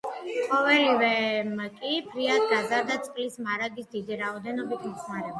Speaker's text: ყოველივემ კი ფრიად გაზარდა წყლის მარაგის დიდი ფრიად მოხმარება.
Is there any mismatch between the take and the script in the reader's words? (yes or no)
yes